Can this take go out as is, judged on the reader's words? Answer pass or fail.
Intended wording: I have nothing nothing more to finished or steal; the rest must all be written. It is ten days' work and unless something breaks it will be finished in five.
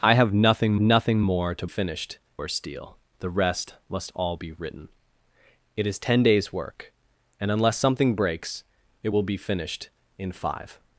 pass